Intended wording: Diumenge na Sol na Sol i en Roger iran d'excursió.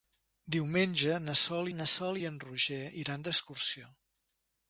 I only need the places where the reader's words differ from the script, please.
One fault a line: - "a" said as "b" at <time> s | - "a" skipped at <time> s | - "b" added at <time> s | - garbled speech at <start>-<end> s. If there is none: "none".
none